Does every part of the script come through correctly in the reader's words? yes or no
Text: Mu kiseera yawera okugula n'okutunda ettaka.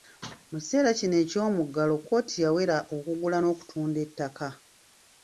no